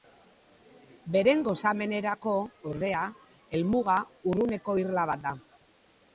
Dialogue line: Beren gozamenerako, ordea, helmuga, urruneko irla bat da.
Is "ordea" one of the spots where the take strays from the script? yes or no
no